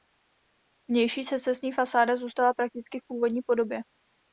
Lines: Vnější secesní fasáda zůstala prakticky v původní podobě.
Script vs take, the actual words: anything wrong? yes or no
no